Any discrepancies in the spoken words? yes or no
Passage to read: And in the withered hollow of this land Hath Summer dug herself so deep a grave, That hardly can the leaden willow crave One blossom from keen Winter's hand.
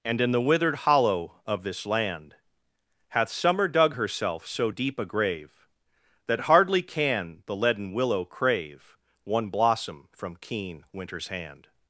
no